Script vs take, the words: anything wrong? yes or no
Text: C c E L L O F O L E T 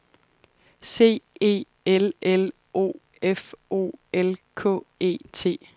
yes